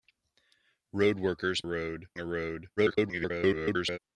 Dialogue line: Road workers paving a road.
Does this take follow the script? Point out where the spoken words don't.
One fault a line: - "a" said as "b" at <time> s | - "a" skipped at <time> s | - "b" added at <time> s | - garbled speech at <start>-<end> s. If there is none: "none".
- "paving" said as "road" at 1.6 s
- garbled speech at 2.8-4.0 s